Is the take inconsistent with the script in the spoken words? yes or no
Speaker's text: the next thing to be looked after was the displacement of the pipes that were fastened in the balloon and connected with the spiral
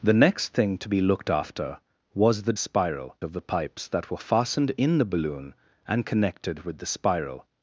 yes